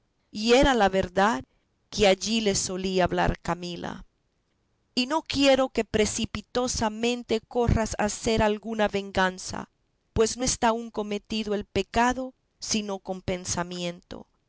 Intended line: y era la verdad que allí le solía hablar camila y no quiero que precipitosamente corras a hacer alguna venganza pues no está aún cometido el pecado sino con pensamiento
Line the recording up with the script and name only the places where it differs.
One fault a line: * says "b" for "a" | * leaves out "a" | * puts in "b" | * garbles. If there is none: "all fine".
all fine